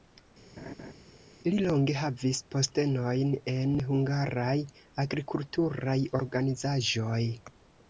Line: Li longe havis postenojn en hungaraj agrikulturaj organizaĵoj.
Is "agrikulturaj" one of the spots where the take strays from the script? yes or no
no